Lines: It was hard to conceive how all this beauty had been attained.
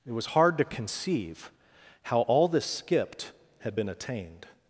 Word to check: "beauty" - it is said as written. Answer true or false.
false